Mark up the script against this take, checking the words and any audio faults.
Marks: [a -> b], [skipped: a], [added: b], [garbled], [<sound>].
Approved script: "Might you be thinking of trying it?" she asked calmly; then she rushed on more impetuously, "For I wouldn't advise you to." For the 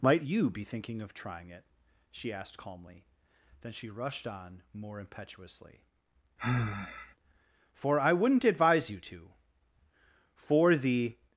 "Might you be thinking of trying it?" she asked calmly; then she rushed on more impetuously, [sigh] "For I wouldn't advise you to." For the